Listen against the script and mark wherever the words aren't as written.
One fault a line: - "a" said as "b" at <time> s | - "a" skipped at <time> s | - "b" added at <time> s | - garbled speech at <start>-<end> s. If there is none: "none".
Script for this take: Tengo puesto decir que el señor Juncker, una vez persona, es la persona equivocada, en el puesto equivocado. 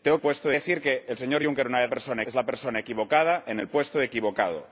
none